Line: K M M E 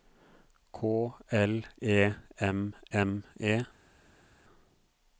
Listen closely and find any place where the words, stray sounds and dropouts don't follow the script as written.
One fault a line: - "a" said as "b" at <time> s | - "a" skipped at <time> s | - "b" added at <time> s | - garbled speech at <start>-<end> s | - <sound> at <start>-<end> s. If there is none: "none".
- "L E" added at 1.3 s